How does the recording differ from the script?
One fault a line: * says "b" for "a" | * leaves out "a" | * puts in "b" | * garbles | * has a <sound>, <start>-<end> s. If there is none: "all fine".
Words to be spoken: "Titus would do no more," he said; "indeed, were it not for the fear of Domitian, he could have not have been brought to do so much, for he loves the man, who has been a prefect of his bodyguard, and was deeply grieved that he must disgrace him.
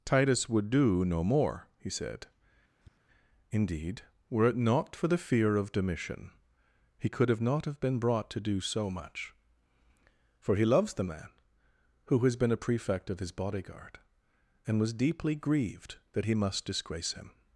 * has a tap, 2.8-3.0 s